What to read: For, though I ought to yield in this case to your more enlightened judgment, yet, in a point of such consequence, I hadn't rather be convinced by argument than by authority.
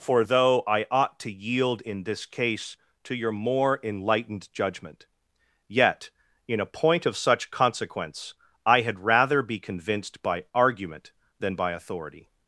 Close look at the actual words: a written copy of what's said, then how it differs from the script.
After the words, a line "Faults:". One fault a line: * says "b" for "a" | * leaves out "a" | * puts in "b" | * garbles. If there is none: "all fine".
For, though I ought to yield in this case to your more enlightened judgment, yet, in a point of such consequence, I had rather be convinced by argument than by authority.
Faults:
* says "had" for "hadn't"